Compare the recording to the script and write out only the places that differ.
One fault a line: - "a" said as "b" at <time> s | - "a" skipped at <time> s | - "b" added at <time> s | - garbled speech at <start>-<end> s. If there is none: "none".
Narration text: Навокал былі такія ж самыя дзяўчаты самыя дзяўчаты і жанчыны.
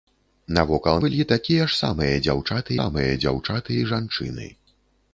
none